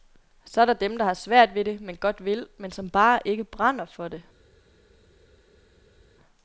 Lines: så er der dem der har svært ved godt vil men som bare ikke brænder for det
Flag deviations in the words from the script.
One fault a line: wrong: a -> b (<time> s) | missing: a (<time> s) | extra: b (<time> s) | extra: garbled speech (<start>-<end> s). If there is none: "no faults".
extra: det men (1.6 s)